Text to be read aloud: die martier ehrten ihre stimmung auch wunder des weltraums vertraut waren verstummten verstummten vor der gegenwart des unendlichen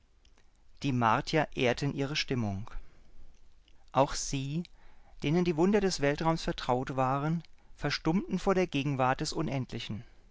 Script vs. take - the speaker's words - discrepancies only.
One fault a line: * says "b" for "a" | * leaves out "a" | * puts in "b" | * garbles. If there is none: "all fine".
* puts in "sie denen die"
* leaves out "verstummten"